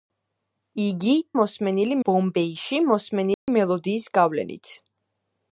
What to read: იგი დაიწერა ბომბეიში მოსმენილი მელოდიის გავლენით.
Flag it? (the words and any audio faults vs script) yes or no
yes